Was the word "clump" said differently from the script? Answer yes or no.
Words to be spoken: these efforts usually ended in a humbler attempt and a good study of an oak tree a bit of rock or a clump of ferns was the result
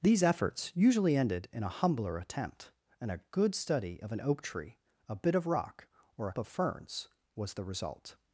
yes